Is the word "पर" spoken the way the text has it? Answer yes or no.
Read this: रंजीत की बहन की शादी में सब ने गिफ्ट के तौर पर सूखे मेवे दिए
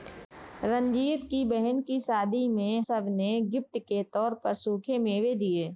yes